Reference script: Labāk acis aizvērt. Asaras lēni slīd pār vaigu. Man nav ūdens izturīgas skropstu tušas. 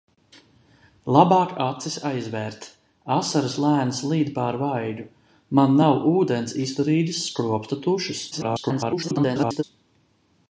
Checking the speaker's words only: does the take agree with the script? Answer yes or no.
no